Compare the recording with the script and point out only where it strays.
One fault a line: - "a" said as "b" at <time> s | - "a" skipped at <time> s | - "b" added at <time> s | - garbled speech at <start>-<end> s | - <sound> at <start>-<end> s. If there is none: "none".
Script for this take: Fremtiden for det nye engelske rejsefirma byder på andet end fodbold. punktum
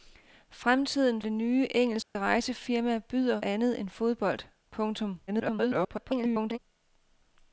- "for" skipped at 1.2 s
- dropout at 2.0-2.2 s
- "på" skipped at 3.4 s
- garbled speech at 5.3-6.6 s